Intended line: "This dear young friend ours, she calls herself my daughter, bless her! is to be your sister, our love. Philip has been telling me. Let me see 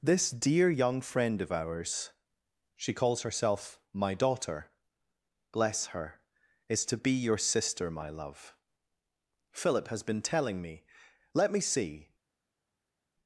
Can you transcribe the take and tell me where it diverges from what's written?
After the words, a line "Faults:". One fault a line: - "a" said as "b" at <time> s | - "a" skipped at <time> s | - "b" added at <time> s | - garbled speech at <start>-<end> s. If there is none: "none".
"This dear young friend of ours, she calls herself my daughter, bless her! is to be your sister, my love. Philip has been telling me. Let me see
Faults:
- "of" added at 1.4 s
- "our" said as "my" at 7.9 s